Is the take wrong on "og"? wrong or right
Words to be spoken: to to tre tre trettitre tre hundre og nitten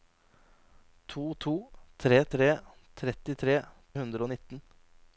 right